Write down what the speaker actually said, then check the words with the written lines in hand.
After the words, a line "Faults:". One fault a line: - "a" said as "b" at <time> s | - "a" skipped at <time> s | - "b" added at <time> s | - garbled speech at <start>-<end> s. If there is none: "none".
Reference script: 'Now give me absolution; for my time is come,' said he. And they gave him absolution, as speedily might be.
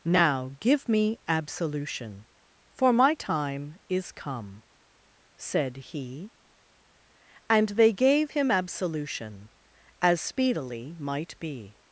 'Now give me absolution; for my time is come,' said he. And they gave him absolution, as speedily might be.
Faults:
none